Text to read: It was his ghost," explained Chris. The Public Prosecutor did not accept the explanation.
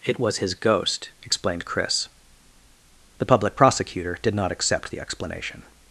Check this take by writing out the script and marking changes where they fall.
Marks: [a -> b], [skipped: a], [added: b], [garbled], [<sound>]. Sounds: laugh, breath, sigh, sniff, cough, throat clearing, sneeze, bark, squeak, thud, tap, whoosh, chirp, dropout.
It was his ghost," explained Chris. The Public Prosecutor did not accept the explanation.